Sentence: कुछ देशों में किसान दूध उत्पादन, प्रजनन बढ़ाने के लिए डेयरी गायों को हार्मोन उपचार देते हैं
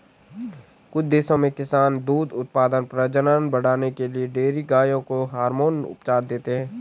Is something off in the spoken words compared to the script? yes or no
no